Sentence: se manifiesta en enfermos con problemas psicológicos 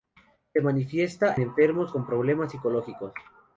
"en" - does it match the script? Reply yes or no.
no